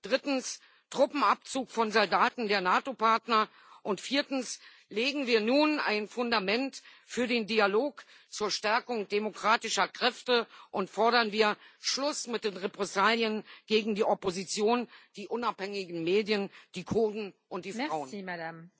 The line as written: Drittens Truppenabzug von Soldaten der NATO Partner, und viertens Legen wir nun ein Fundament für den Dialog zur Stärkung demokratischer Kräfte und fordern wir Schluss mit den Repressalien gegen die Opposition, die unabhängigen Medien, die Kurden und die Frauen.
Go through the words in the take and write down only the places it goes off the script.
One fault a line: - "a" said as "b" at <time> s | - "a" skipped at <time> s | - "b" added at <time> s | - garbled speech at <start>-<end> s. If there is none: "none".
none